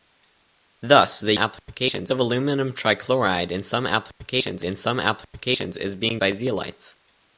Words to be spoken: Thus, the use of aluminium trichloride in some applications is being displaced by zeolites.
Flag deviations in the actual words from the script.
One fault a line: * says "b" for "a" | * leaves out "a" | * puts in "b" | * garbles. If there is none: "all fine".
* says "applications" for "use"
* puts in "in some applications"
* leaves out "displaced"